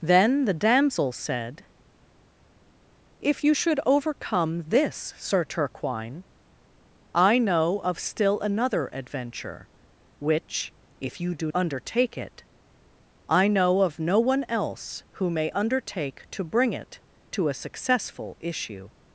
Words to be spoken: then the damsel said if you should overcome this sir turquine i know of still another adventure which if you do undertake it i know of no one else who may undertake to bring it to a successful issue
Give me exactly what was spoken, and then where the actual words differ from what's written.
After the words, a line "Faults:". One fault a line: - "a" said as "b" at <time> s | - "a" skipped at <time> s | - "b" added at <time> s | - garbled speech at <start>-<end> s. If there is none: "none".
then the damsel said if you should overcome this sir turquine i know of still another adventure which if you do undertake it i know of no one else who may undertake to bring it to a successful issue
Faults:
none